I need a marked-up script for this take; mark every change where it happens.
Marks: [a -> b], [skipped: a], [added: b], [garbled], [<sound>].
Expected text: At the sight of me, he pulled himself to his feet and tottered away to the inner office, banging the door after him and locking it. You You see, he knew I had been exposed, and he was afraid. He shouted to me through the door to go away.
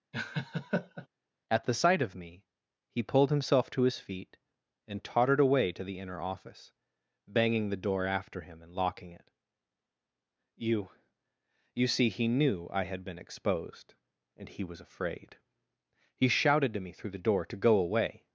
[laugh] At the sight of me, he pulled himself to his feet and tottered away to the inner office, banging the door after him and locking it. You You see, he knew I had been exposed, and he was afraid. He shouted to me through the door to go away.